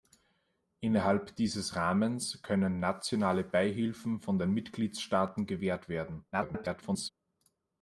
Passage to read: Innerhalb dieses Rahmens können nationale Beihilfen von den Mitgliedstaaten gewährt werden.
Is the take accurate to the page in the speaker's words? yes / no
no